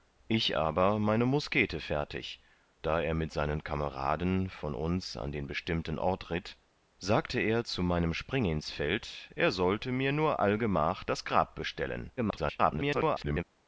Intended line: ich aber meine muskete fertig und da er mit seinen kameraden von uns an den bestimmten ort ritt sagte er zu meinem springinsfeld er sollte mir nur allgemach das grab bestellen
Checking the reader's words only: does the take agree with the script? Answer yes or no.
no